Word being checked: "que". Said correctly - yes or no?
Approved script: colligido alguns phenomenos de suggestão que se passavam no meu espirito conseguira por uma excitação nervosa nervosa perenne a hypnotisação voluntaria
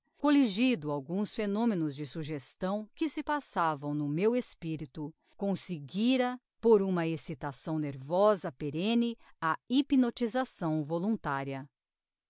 yes